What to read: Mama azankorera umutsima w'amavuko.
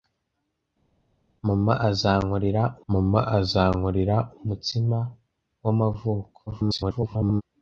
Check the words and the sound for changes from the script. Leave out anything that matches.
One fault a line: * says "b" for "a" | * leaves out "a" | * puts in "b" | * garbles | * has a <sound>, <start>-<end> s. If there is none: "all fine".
* puts in "mama azankorera"
* garbles